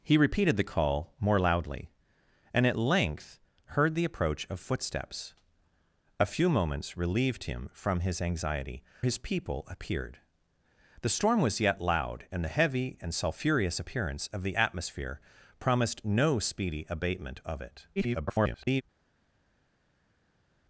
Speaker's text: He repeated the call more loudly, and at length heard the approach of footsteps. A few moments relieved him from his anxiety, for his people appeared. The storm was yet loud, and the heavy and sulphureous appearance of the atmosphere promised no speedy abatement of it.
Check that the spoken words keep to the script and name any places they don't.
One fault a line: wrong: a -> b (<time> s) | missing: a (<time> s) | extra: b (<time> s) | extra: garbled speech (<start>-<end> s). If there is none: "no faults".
missing: for (8.8 s)
extra: garbled speech (18.0-18.8 s)